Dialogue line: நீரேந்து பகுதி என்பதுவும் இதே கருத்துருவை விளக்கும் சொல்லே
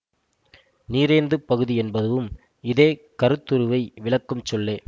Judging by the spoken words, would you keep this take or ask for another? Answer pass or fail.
pass